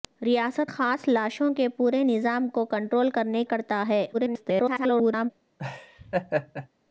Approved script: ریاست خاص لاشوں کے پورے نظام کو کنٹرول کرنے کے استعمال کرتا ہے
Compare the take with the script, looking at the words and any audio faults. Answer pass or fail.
fail